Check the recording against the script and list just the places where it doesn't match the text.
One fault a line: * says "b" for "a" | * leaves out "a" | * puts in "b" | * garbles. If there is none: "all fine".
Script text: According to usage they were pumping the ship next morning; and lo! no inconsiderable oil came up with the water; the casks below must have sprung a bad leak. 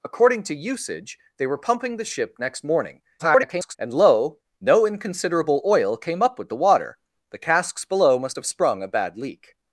* garbles